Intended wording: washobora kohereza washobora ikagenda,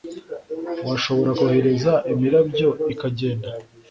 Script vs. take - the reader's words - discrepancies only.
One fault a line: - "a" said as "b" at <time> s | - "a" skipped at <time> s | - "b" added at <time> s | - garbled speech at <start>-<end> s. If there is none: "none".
- "washobora" said as "imirabyo" at 2.1 s